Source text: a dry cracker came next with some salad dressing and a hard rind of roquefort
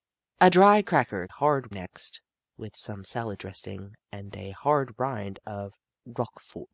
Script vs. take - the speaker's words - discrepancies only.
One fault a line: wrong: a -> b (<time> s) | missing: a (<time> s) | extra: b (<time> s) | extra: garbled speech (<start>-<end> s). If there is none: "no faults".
wrong: came -> hard (1.3 s)